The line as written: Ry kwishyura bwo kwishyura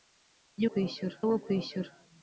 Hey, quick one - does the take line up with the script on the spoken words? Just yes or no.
yes